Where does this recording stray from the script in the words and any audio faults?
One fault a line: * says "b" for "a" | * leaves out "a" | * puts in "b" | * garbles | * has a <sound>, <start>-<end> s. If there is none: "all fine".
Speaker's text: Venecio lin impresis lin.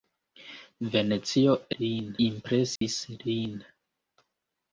* has a dropout, 2.8-2.8 s